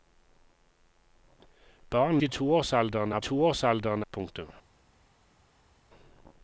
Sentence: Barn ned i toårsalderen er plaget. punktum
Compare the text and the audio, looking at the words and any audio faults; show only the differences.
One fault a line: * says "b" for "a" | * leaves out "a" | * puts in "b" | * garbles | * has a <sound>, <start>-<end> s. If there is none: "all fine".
* leaves out "ned"
* says "toårsalderen" for "plaget"